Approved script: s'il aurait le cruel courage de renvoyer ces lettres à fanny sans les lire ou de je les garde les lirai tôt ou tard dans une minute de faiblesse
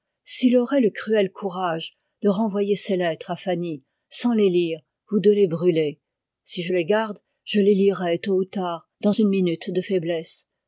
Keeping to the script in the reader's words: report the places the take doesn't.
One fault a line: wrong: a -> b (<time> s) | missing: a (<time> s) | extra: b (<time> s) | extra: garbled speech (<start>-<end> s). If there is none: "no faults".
extra: les brûler si (5.3 s)
extra: je (7.4 s)